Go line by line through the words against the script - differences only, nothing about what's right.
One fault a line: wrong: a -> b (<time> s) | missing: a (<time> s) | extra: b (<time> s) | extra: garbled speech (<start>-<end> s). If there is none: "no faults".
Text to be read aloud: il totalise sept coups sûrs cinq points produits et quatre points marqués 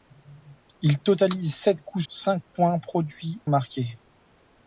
missing: sûrs (2.0 s)
missing: et quatre points (3.4 s)